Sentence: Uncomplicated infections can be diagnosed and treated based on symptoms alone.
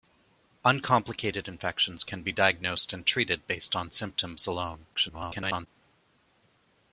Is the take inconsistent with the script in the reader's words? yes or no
yes